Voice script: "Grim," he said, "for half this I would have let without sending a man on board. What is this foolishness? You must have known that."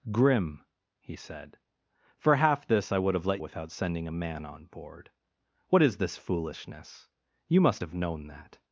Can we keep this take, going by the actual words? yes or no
yes